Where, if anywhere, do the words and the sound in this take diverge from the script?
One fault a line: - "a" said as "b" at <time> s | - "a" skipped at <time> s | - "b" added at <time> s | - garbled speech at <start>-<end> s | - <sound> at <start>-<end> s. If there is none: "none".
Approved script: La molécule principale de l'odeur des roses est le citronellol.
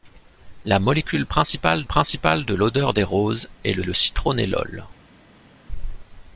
- "principale" added at 1.9 s
- "le" added at 3.8 s